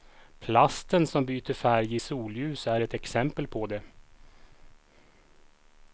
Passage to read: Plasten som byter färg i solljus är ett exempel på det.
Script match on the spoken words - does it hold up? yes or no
yes